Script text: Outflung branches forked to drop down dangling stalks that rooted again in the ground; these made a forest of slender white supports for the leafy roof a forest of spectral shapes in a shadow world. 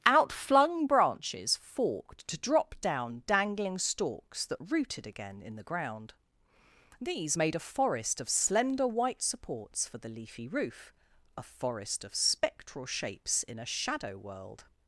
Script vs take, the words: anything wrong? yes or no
no